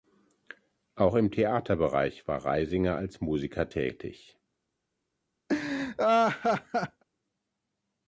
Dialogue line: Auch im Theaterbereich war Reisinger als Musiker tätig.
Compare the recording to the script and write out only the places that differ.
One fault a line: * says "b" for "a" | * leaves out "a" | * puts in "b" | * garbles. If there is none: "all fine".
all fine